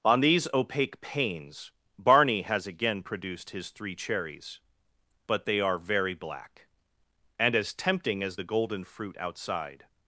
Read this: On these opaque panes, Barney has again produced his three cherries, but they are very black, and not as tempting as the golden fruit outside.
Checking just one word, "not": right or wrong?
wrong